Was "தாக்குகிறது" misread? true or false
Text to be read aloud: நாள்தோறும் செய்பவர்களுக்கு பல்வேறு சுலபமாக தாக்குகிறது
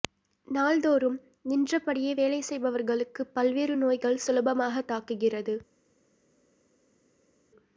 false